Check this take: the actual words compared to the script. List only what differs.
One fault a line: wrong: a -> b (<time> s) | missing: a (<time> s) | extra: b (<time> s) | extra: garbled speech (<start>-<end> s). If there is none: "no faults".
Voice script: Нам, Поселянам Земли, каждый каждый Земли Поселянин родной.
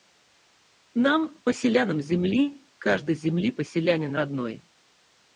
missing: каждый (3.1 s)